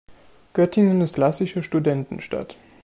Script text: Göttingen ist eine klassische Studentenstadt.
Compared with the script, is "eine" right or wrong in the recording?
wrong